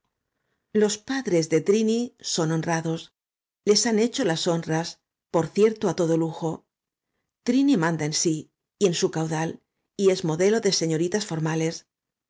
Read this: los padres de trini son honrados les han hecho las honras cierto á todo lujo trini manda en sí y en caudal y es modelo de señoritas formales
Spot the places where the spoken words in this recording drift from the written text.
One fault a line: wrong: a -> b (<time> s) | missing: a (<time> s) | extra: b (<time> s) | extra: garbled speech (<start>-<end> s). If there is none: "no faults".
extra: por (5.3 s)
extra: su (8.9 s)